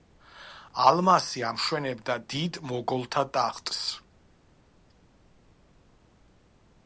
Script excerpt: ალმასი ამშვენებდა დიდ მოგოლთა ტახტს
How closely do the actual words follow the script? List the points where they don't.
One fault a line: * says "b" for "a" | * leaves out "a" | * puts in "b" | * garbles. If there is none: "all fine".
all fine